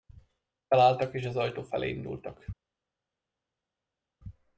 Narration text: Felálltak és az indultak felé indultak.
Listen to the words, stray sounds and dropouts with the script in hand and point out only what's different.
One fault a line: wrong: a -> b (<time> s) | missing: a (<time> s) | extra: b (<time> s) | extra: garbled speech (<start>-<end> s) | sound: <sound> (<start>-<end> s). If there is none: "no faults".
wrong: indultak -> ajtó (1.4 s)